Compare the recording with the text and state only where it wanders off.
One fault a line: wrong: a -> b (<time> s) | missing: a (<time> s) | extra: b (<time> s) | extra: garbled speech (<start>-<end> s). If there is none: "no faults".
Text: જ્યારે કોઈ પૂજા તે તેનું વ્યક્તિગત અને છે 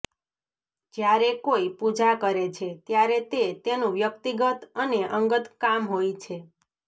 extra: કરે છે ત્યારે (2.2 s)
extra: અંગત કામ હોય (5.2 s)